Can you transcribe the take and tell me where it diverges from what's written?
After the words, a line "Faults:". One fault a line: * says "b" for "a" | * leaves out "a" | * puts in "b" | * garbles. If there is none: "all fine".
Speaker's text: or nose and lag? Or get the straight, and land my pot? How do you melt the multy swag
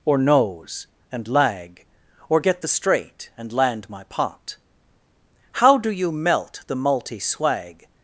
or nose and lag? Or get the straight, and land my pot? How do you melt the multy swag
Faults:
all fine